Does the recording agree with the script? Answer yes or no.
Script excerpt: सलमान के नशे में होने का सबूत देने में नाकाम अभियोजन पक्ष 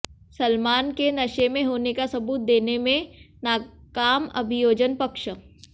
yes